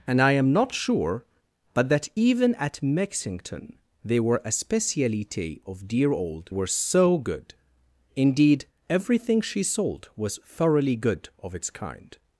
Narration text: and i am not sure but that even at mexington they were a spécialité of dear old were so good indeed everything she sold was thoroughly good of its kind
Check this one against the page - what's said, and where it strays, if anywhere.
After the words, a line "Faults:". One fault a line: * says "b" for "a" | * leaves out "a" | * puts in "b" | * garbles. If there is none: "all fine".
and i am not sure but that even at mexington they were a spécialité of dear old were so good indeed everything she sold was thoroughly good of its kind
Faults:
all fine